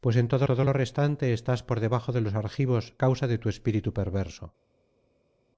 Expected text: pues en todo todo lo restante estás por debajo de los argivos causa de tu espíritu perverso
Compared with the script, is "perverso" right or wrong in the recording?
right